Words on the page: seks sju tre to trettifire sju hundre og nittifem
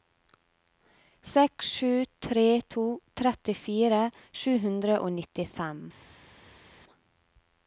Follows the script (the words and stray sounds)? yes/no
yes